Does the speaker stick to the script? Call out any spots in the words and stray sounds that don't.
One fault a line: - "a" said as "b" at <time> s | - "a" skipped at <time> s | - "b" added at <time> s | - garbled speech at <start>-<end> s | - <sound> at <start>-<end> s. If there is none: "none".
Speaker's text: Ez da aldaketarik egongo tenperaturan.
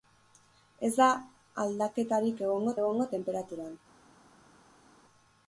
- "egongo" added at 2.8 s